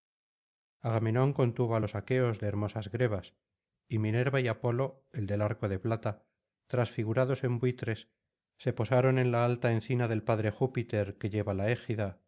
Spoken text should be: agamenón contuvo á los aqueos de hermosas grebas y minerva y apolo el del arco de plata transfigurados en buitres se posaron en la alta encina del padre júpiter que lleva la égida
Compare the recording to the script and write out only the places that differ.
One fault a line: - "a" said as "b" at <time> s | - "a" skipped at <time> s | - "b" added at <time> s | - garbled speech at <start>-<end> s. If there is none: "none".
none